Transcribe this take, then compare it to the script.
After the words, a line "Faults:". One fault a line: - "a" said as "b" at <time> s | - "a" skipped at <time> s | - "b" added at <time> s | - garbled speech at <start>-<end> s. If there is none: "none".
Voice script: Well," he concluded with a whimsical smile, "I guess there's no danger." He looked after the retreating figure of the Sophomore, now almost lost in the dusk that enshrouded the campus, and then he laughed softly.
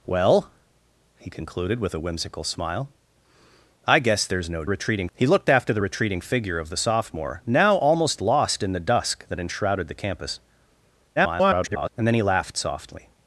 Well," he concluded with a whimsical smile, "I guess there's no retreating." He looked after the retreating figure of the Sophomore, now almost lost in the dusk that enshrouded the campus, [garbled] and then he laughed softly.
Faults:
- "danger" said as "retreating" at 4.7 s
- garbled speech at 11.2-11.9 s